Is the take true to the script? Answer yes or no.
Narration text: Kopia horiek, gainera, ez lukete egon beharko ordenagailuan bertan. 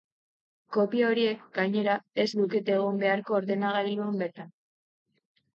yes